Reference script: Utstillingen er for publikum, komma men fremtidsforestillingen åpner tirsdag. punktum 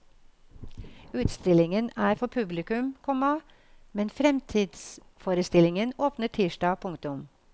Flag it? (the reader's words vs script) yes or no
no